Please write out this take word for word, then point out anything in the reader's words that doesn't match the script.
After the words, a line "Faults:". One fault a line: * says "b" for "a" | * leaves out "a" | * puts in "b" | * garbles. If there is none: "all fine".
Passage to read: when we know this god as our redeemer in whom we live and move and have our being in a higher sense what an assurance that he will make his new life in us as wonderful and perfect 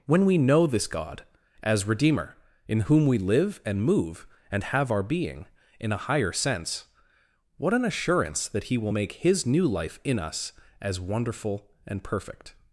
when we know this god as redeemer in whom we live and move and have our being in a higher sense what an assurance that he will make his new life in us as wonderful and perfect
Faults:
* leaves out "our"